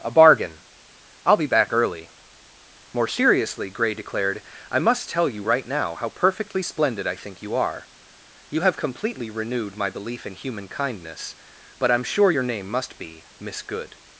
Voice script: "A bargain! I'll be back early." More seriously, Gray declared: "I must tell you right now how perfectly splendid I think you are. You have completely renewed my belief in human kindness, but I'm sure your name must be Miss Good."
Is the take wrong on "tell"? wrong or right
right